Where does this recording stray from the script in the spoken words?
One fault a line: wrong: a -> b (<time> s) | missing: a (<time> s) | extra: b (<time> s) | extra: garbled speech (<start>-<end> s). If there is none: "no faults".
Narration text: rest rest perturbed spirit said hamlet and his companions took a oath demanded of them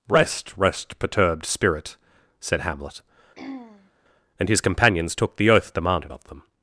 wrong: a -> the (5.4 s)